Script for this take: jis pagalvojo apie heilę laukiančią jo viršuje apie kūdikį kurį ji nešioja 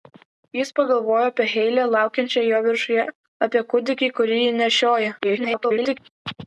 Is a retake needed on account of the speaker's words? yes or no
yes